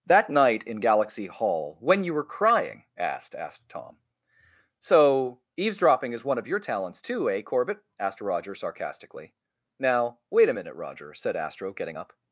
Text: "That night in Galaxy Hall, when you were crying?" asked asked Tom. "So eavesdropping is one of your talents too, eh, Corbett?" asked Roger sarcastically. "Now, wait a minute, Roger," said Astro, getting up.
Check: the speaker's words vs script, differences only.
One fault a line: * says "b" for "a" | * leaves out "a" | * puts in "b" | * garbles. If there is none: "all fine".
all fine